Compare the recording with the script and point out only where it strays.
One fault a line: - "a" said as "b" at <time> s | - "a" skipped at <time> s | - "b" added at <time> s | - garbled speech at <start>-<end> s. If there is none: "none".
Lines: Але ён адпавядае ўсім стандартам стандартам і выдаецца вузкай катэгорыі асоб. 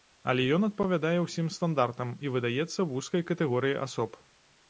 - "стандартам" skipped at 2.1 s